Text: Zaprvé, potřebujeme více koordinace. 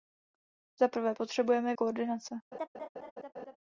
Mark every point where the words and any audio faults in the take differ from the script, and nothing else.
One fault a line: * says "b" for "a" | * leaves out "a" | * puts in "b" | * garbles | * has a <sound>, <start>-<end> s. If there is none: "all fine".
* leaves out "více"
* has a laugh, 2.5-3.6 s